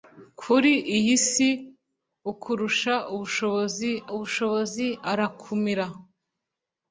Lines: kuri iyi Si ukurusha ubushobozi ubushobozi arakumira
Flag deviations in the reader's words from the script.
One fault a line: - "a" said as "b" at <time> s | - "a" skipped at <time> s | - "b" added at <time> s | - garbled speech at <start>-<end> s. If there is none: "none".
none